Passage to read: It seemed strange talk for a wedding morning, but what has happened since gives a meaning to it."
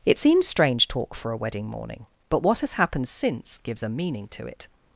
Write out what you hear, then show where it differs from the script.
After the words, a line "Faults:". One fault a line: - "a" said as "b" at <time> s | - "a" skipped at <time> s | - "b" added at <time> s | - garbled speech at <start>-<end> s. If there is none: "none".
It seems strange talk for a wedding morning, but what has happened since gives a meaning to it."
Faults:
- "seemed" said as "seems" at 0.2 s